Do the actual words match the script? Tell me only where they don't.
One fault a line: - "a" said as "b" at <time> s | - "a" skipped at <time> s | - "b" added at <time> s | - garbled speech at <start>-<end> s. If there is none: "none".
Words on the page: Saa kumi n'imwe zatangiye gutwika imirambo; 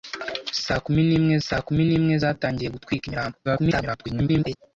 - "saa kumi n'imwe" added at 1.4 s
- garbled speech at 3.4-4.6 s